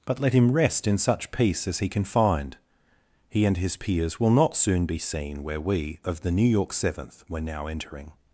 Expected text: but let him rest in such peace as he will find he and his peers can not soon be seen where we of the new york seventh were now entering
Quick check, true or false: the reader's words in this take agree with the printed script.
false